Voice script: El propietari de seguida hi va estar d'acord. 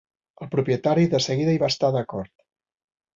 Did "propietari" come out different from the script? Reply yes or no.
no